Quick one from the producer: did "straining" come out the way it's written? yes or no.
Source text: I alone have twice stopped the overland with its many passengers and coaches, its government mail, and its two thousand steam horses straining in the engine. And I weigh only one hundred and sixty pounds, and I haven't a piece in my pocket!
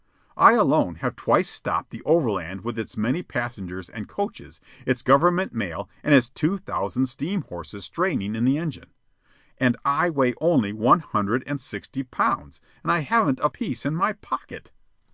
yes